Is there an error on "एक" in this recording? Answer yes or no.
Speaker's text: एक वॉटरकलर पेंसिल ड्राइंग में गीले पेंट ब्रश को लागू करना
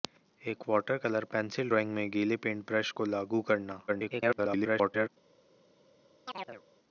no